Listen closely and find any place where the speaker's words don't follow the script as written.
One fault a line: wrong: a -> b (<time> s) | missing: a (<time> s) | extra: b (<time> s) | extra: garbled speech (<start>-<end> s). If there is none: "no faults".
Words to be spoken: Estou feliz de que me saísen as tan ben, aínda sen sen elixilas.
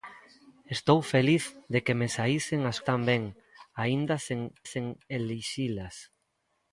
no faults